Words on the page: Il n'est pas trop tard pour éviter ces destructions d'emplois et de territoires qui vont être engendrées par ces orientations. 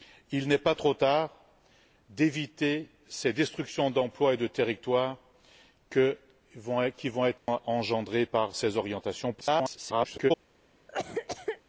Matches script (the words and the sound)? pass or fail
fail